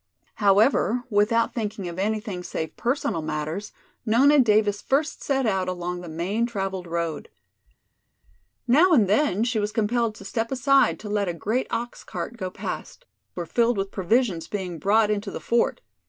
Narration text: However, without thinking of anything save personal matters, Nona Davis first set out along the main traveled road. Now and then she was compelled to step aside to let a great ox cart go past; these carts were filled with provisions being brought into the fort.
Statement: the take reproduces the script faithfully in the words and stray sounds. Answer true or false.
false